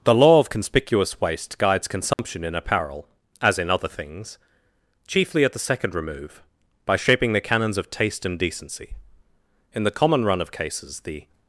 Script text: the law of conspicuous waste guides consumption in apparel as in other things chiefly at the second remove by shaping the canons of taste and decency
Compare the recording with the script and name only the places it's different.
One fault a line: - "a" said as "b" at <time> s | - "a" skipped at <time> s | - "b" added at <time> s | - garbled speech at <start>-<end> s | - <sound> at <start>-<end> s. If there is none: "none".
- dropout at 2.1-2.2 s
- "in the common run of cases the" added at 9.7 s